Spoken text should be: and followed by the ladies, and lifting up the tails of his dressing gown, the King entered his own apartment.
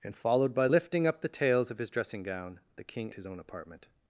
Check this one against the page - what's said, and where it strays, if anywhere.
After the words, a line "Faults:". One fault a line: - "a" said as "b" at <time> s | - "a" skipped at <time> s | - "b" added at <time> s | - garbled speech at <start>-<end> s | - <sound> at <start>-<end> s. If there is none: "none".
and followed by lifting up the tails of his dressing gown, the King his own apartment.
Faults:
- "the ladies and" skipped at 0.7 s
- "entered" skipped at 3.1 s